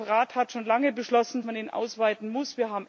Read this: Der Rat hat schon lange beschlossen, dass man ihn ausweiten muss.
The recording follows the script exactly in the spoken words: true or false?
false